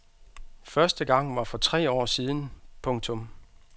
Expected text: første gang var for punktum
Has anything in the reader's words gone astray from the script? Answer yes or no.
yes